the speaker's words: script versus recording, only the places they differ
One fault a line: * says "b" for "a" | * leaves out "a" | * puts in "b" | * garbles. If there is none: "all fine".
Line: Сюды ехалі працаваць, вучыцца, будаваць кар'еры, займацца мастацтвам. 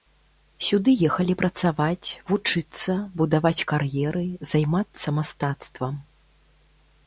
all fine